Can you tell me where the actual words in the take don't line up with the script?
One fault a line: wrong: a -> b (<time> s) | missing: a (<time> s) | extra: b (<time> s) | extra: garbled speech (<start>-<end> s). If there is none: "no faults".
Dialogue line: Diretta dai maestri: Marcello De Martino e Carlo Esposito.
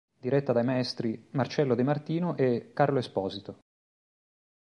no faults